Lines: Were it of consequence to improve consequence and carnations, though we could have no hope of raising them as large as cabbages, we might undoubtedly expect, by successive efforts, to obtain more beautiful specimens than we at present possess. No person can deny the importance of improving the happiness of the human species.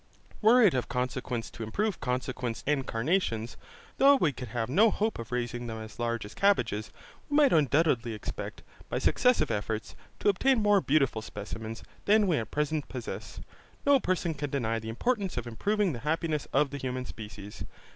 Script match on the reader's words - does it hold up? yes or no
yes